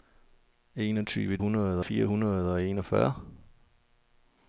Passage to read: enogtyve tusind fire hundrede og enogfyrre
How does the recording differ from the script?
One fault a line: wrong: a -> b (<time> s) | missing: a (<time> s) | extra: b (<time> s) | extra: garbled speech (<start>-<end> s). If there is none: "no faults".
wrong: tusind -> hundrede (1.4 s)